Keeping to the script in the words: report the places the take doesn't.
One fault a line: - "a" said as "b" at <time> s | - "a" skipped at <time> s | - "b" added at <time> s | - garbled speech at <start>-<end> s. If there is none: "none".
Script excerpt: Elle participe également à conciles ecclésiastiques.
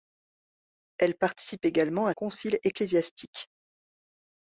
none